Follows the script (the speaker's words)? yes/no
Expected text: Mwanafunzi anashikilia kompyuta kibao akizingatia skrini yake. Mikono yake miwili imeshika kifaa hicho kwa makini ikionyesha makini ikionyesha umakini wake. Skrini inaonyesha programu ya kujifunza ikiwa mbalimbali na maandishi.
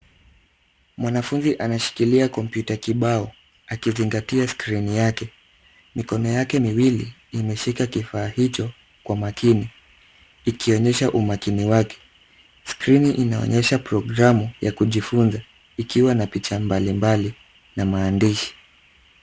no